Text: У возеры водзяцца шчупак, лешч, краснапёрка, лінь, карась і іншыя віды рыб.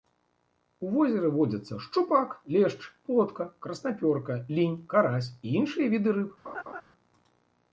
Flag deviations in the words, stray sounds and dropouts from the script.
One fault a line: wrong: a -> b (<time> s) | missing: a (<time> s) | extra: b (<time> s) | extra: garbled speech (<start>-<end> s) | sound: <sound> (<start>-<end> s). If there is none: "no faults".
extra: плотка (3.0 s)
sound: laugh (6.4-6.8 s)